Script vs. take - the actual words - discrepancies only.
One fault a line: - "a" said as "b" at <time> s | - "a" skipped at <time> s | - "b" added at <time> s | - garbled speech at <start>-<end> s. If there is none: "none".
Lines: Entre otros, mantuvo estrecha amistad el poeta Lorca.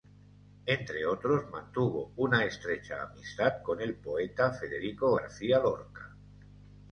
- "una" added at 2.1 s
- "con" added at 3.6 s
- "Federico García" added at 4.5 s